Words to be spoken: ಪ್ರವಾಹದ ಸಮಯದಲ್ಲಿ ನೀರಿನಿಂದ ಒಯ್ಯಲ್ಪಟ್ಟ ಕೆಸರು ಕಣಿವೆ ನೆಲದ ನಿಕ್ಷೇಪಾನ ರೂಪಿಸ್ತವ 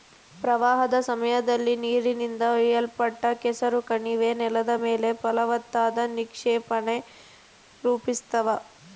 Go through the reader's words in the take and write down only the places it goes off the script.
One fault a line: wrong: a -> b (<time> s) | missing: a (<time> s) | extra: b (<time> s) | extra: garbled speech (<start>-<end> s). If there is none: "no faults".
extra: ಮೇಲೆ ಫಲವತ್ತಾದ (4.8 s)